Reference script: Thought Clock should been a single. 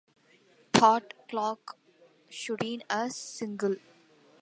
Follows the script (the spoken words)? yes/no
yes